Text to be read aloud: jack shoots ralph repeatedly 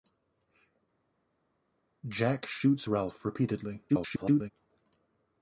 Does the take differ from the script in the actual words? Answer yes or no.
yes